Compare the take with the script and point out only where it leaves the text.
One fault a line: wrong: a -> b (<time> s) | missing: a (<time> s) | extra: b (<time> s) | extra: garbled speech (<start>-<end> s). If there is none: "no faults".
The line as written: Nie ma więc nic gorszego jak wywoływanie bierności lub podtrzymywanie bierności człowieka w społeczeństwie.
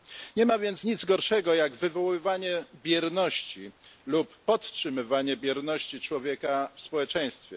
no faults